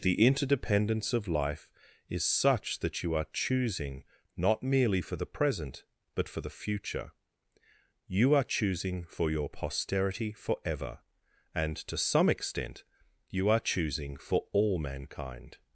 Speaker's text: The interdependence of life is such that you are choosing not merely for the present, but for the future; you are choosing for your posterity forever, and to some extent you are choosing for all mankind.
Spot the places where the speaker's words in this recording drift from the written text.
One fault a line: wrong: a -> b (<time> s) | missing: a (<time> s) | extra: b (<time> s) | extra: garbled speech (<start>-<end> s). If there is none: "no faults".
no faults